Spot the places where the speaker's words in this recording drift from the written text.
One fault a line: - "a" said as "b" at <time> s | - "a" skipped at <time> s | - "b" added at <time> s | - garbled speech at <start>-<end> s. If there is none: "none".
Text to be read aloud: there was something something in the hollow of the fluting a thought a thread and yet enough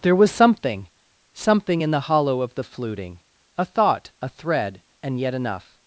none